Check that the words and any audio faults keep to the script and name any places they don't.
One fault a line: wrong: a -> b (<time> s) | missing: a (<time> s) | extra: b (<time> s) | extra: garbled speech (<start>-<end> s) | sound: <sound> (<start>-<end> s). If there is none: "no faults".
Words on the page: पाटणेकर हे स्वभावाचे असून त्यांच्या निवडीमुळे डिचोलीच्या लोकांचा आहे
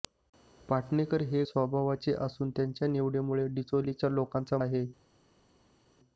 no faults